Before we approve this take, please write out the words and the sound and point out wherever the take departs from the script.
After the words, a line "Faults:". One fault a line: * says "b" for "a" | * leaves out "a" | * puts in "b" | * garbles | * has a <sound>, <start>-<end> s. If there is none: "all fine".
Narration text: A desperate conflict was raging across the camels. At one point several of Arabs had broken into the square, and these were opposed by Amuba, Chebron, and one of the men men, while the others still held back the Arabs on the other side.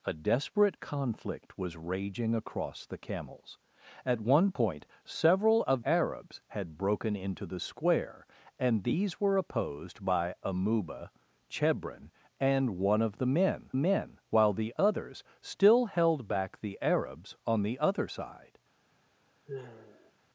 A desperate conflict was raging across the camels. At one point several of Arabs had broken into the square, and these were opposed by Amuba, Chebron, and one of the men men, while the others still held back the Arabs on the other side.
Faults:
* has a sigh, 19.5-20.1 s